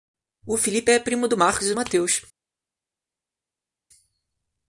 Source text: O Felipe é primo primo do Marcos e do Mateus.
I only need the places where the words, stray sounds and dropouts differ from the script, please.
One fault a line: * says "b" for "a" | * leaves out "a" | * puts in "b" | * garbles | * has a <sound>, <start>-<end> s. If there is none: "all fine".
* leaves out "primo"